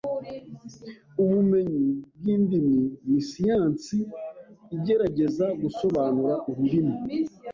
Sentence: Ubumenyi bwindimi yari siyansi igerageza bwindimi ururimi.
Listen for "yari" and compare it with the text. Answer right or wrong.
wrong